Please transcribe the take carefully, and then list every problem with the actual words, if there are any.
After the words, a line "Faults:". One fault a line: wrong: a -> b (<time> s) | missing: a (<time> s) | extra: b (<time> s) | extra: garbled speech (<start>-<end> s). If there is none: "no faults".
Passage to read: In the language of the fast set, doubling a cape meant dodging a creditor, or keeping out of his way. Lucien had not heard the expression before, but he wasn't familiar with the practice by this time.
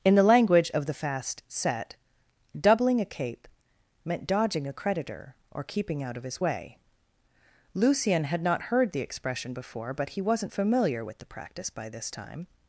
In the language of the fast set, doubling a cape meant dodging a creditor, or keeping out of his way. Lucien had not heard the expression before, but he wasn't familiar with the practice by this time.
Faults:
no faults